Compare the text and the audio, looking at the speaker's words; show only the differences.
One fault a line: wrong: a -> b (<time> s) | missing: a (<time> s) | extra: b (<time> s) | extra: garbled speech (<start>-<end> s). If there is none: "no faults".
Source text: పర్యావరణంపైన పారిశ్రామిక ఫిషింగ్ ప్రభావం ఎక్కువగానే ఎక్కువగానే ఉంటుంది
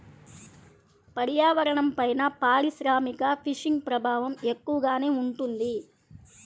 missing: ఎక్కువగానే (5.1 s)